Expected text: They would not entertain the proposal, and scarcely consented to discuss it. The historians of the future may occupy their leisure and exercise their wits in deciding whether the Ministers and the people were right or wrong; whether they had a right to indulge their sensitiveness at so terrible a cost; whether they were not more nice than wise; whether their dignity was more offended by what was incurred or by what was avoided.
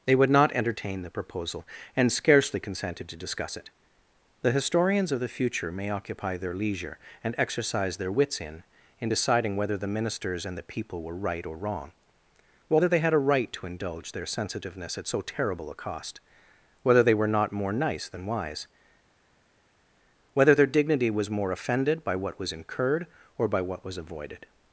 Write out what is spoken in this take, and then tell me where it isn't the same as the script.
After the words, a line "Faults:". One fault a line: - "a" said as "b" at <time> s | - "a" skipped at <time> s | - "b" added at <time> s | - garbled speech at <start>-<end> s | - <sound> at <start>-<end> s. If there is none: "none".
They would not entertain the proposal, and scarcely consented to discuss it. The historians of the future may occupy their leisure and exercise their wits in in deciding whether the Ministers and the people were right or wrong; whether they had a right to indulge their sensitiveness at so terrible a cost; whether they were not more nice than wise; whether their dignity was more offended by what was incurred or by what was avoided.
Faults:
- "in" added at 9.0 s